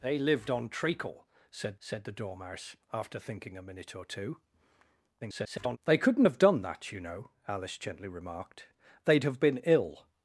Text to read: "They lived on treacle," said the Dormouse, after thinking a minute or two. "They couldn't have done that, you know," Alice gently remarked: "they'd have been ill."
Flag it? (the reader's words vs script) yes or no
yes